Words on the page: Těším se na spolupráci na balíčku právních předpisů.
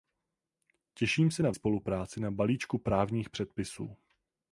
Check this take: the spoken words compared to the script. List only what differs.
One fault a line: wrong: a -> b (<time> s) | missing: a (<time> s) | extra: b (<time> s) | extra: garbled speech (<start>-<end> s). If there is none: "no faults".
no faults